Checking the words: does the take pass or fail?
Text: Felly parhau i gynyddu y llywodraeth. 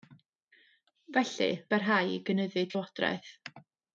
pass